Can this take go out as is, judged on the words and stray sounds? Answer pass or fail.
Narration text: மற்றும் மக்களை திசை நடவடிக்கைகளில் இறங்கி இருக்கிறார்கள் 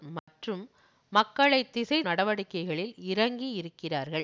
fail